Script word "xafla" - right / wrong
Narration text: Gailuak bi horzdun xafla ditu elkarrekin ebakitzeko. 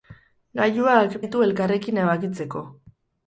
wrong